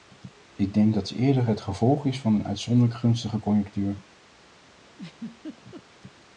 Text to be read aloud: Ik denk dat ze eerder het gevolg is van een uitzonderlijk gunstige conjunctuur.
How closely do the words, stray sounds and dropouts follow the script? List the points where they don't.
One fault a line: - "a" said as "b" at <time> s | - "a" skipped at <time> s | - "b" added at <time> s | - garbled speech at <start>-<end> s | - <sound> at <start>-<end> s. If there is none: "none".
- laugh at 4.9-5.8 s